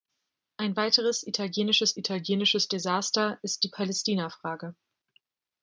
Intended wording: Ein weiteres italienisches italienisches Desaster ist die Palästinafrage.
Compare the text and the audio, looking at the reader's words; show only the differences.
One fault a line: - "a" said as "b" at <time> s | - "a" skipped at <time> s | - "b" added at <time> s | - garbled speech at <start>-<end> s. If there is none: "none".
none